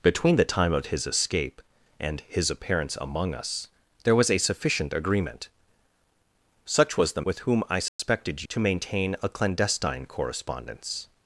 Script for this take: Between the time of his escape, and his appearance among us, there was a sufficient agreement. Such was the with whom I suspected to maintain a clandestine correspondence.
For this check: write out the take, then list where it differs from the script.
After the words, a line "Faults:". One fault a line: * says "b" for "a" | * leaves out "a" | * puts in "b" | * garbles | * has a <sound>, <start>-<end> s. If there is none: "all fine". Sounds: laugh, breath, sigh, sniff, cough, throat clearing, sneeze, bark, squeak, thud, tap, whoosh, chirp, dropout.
Between the time of his escape, and his appearance among us, there was a sufficient agreement. Such was the with whom I suspected to maintain a clandestine correspondence.
Faults:
* has a dropout, 7.9-8.0 s